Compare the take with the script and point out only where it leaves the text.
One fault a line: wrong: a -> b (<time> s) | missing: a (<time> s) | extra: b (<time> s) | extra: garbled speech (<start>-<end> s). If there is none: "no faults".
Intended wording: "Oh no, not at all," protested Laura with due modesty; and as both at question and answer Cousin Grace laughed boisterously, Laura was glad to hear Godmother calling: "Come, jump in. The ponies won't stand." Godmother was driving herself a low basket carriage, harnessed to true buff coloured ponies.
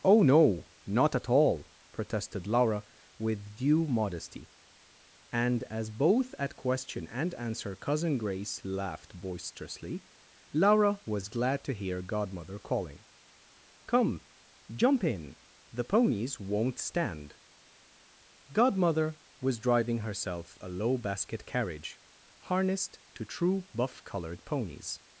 no faults